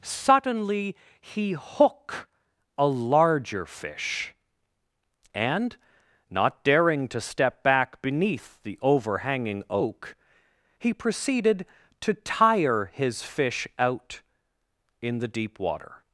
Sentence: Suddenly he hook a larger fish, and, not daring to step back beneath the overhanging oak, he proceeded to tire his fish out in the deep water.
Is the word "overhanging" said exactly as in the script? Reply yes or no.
yes